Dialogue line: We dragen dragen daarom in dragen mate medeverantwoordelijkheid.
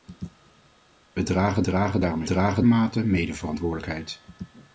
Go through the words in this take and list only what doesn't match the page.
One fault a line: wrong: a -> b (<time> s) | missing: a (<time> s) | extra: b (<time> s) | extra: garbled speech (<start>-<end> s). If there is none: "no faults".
no faults